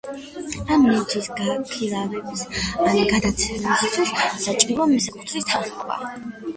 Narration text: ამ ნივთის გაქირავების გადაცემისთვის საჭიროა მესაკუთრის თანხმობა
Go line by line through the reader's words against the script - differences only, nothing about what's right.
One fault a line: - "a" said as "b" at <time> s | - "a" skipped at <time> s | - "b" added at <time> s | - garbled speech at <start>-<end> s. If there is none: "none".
- "ან" added at 2.9 s